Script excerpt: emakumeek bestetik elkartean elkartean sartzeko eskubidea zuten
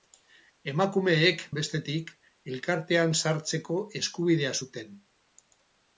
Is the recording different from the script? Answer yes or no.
yes